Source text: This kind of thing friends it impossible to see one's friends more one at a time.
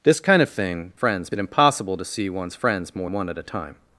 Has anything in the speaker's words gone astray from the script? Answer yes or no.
no